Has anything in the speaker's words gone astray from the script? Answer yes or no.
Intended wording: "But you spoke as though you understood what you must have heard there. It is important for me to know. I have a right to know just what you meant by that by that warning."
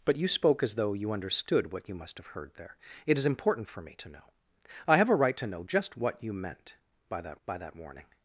no